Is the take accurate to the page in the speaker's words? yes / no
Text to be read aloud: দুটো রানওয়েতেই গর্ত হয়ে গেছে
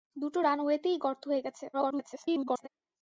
no